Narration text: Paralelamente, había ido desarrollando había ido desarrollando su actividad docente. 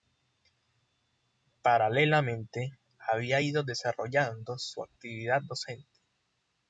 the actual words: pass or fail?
fail